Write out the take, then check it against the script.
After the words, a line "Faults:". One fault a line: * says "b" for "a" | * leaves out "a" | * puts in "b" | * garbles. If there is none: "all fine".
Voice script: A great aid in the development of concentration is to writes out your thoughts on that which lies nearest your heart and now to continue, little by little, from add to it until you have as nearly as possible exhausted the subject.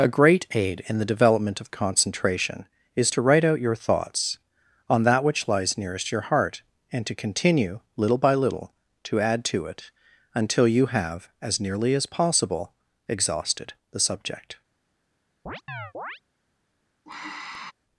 A great aid in the development of concentration is to write out your thoughts on that which lies nearest your heart and to continue, little by little, to add to it until you have as nearly as possible exhausted the subject.
Faults:
* says "write" for "writes"
* leaves out "now"
* says "to" for "from"